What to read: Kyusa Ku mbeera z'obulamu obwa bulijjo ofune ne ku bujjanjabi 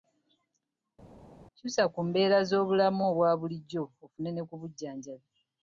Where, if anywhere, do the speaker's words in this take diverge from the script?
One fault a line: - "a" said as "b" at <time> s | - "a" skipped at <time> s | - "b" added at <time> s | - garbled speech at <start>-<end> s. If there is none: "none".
none